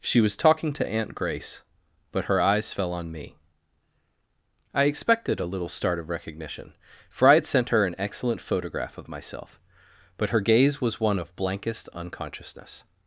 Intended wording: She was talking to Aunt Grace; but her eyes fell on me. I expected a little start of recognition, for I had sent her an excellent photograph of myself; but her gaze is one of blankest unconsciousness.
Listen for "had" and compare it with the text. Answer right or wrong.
right